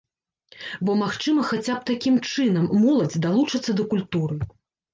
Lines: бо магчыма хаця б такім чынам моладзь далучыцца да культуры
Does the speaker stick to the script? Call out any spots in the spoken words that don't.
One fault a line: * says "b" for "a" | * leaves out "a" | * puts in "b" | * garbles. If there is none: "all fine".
all fine